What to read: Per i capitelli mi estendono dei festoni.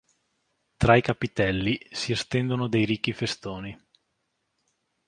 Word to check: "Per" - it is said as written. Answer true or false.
false